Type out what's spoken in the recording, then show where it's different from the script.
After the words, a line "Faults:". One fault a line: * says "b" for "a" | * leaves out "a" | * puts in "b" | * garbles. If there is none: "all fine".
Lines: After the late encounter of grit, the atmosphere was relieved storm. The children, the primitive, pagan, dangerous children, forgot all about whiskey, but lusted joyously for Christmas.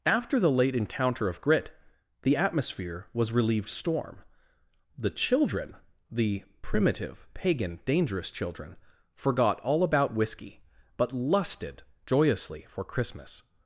After the late encounter of grit, the atmosphere was relieved storm. The children, the primitive, pagan, dangerous children, forgot all about whiskey, but lusted joyously for Christmas.
Faults:
all fine